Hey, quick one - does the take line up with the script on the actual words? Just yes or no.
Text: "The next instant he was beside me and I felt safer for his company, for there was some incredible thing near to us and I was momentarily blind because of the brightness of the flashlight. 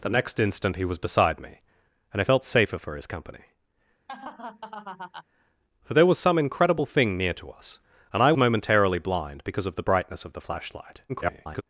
no